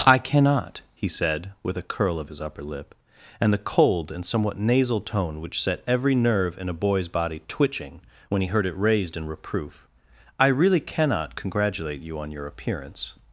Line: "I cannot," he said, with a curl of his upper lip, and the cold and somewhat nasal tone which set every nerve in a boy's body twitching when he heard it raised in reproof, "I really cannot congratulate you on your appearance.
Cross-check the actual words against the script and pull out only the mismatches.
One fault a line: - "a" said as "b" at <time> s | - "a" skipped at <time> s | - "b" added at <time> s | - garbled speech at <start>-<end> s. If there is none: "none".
none